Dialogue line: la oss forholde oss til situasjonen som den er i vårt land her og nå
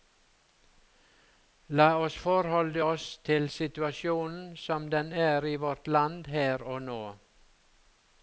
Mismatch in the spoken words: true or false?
false